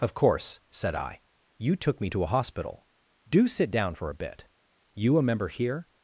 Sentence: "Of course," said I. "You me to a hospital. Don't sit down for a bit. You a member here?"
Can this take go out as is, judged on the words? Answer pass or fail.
fail